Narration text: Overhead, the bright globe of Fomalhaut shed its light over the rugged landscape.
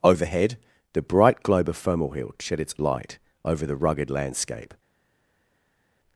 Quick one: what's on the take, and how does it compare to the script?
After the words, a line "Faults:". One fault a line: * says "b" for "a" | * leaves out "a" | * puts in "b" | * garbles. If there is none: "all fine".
Overhead, the bright globe of Fomalhaut shed its light over the rugged landscape.
Faults:
all fine